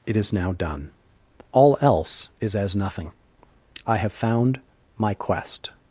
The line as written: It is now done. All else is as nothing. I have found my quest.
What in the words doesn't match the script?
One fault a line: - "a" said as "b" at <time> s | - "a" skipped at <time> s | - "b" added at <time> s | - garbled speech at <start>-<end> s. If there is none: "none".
none